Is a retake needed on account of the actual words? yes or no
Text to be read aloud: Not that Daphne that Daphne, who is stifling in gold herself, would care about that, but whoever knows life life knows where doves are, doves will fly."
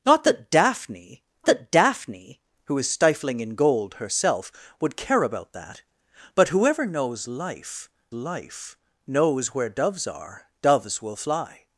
no